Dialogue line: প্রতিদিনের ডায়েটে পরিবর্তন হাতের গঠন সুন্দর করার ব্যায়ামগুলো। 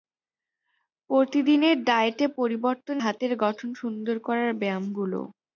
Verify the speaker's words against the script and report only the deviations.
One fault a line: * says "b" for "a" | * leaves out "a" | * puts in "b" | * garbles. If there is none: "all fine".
all fine